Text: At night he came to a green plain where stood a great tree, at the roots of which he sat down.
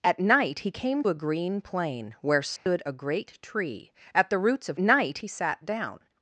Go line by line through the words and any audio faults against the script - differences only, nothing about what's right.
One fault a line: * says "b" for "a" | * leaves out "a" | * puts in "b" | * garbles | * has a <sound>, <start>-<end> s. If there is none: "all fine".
* leaves out "to"
* has a dropout, 2.6-2.7 s
* says "night" for "which"